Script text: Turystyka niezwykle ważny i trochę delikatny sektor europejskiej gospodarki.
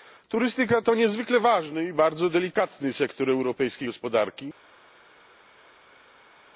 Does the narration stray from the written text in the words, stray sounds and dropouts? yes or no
yes